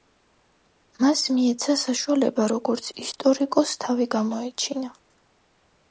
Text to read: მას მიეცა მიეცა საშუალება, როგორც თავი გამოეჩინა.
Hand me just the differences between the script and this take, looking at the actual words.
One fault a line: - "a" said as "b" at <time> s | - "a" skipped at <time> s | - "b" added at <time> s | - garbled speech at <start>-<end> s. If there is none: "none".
- "მიეცა" skipped at 1.8 s
- "ისტორიკოსს" added at 3.1 s